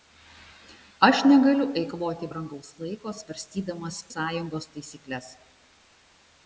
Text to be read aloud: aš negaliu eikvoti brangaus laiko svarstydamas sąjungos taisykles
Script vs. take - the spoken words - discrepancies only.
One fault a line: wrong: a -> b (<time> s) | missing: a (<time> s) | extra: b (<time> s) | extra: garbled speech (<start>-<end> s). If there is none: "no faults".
no faults